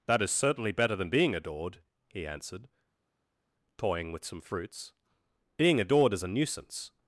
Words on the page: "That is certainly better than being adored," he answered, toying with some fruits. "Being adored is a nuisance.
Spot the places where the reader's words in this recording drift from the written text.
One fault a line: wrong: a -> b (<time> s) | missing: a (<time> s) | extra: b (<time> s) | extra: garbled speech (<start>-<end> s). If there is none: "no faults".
no faults